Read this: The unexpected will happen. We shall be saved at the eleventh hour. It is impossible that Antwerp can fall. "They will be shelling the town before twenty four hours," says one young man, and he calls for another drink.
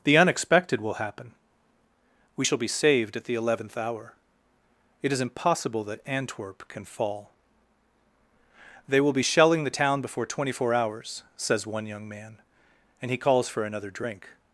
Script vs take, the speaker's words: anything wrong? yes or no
no